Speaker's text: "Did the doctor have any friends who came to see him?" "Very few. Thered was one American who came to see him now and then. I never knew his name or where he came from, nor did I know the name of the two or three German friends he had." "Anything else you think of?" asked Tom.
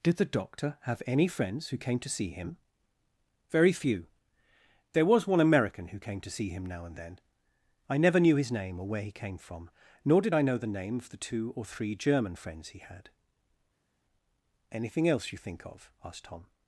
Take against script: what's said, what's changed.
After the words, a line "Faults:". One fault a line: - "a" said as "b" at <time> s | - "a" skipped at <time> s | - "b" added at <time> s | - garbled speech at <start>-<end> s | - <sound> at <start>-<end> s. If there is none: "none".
"Did the doctor have any friends who came to see him?" "Very few. There was one American who came to see him now and then. I never knew his name or where he came from, nor did I know the name of the two or three German friends he had." "Anything else you think of?" asked Tom.
Faults:
- "Thered" said as "There" at 4.9 s